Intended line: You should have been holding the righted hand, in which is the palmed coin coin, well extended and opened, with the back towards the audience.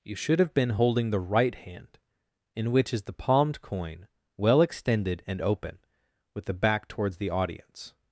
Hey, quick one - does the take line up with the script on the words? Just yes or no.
no